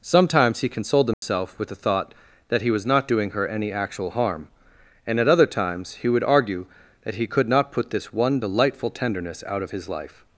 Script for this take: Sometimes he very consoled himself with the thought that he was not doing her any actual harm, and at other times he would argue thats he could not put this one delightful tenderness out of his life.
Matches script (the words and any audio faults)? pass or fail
fail